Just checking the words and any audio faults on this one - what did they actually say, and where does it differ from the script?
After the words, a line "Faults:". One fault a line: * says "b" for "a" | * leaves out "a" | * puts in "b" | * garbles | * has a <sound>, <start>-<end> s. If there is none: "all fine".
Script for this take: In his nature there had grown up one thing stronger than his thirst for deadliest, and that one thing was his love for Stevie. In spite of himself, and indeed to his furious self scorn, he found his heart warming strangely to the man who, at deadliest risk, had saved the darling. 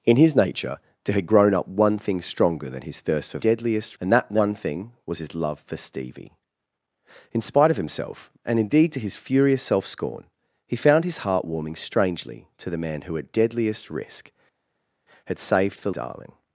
In his nature there had grown up one thing stronger than his thirst for deadliest, and that one thing was his love for Stevie. In spite of himself, and indeed to his furious self scorn, he found his heart warming strangely to the man who, at deadliest risk, had saved the darling.
Faults:
all fine